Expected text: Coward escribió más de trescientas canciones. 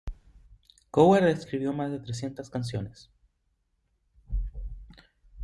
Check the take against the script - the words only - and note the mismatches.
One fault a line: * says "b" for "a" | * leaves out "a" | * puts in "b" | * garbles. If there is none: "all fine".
all fine